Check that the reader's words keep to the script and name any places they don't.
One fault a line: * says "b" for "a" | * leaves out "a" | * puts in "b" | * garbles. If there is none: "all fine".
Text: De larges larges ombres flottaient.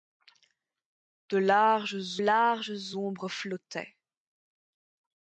all fine